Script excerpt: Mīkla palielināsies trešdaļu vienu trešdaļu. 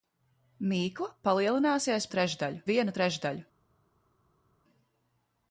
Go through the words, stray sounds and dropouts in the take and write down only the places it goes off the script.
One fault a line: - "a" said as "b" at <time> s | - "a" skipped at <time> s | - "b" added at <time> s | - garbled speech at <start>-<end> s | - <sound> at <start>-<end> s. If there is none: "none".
none